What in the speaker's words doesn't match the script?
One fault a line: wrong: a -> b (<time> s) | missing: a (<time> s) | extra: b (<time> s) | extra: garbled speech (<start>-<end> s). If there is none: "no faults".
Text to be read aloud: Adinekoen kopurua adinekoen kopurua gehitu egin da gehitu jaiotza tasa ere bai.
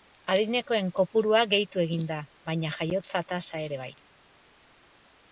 missing: adinekoen kopurua (1.4 s)
wrong: gehitu -> baina (2.5 s)